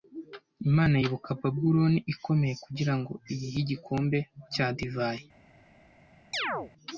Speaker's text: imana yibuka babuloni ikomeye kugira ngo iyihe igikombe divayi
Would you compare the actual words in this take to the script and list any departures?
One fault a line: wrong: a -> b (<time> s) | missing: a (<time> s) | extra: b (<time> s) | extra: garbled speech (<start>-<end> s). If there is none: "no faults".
extra: cya (4.5 s)